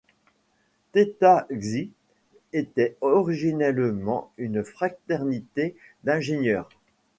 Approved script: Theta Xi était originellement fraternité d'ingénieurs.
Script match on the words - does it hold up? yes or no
no